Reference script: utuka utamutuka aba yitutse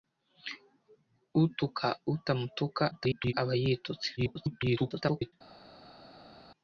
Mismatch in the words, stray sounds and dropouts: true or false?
true